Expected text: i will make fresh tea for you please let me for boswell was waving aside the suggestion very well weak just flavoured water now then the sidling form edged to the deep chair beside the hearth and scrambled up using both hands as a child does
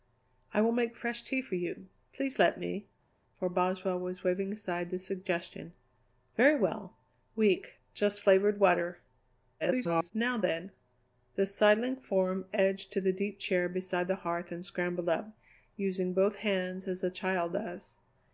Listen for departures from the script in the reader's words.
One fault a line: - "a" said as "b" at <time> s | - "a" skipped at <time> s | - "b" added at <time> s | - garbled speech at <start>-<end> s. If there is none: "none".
- garbled speech at 9.6-10.1 s